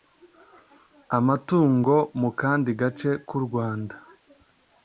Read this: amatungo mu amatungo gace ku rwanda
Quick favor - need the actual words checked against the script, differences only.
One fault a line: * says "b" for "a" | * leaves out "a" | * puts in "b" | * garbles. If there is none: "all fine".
* says "kandi" for "amatungo"